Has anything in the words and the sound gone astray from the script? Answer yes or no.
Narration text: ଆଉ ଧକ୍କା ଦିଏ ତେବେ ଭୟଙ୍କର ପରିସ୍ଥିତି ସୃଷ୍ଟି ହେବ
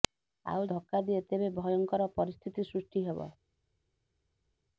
no